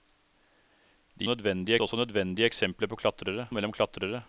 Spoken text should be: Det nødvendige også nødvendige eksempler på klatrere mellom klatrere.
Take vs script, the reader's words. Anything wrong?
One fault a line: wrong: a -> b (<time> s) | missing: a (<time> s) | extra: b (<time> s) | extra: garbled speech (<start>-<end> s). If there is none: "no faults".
no faults